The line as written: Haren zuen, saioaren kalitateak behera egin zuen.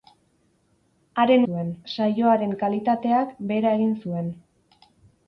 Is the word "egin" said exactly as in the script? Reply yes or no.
yes